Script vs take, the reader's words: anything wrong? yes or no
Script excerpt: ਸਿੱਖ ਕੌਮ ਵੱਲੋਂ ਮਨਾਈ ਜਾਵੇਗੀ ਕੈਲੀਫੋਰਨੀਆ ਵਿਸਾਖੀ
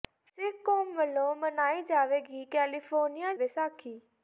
no